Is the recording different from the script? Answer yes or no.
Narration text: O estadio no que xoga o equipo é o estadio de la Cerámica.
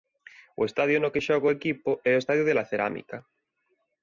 no